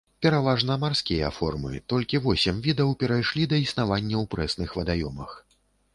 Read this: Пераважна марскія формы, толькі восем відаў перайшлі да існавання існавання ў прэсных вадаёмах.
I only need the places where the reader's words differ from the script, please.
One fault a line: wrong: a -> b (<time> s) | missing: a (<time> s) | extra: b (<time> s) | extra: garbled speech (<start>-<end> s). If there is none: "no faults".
missing: існавання (4.2 s)